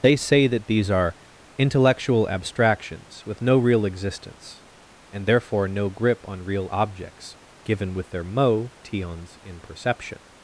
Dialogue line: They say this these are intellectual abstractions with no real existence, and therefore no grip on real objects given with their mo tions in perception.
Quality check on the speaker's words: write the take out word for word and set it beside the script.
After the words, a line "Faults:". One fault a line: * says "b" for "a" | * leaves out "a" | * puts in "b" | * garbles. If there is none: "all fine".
They say that these are intellectual abstractions with no real existence, and therefore no grip on real objects given with their mo tions in perception.
Faults:
* says "that" for "this"